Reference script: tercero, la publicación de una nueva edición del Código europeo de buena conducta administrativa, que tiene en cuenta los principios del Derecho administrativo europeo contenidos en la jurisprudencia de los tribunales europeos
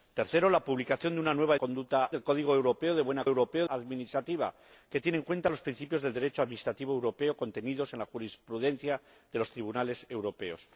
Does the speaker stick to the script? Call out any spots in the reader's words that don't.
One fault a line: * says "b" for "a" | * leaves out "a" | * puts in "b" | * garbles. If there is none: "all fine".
* says "conducta" for "edición"
* says "europeo" for "conducta"